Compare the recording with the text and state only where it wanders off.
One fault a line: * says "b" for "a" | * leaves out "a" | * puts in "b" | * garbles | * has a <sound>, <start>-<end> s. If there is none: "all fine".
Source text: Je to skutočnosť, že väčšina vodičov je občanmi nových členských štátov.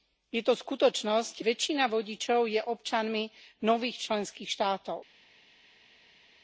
* leaves out "že"